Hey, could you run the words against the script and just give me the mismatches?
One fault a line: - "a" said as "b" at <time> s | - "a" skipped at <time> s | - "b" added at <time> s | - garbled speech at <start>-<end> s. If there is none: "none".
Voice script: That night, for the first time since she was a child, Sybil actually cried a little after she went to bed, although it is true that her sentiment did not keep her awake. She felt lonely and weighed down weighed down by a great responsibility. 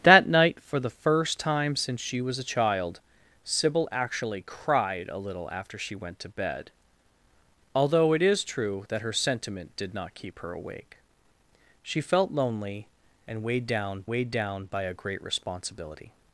none